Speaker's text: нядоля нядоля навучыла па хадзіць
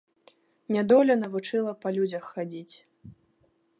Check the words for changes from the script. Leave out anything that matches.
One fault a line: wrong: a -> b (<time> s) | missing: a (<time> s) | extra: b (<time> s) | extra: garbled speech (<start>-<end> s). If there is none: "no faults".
missing: нядоля (1.2 s)
extra: людзях (2.0 s)